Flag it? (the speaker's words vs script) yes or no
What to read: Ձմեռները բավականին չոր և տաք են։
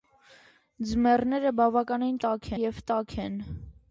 yes